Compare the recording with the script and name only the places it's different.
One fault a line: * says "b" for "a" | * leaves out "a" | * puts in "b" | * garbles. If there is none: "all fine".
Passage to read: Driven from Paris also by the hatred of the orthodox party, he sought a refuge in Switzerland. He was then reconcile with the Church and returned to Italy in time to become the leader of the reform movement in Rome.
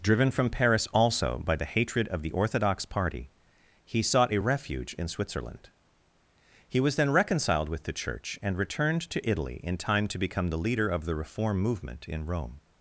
* says "reconciled" for "reconcile"